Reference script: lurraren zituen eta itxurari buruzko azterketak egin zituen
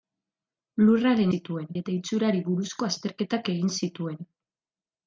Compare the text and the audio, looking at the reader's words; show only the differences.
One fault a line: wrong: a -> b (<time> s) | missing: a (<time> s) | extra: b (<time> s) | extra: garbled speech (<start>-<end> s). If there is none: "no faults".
no faults